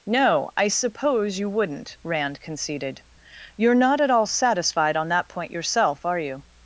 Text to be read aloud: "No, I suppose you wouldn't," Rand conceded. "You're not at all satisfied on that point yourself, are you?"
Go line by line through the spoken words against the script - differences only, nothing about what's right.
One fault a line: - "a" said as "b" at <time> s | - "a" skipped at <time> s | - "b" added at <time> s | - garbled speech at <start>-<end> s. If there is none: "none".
none